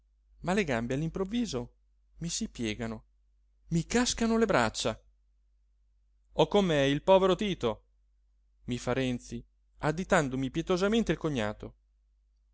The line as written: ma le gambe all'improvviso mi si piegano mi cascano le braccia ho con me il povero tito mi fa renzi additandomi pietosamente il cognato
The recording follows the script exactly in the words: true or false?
true